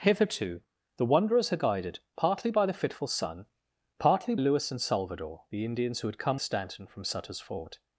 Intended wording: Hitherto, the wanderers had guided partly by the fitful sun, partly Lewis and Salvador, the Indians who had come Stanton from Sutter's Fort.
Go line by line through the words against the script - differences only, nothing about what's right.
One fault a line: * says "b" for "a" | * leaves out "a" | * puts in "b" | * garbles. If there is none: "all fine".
all fine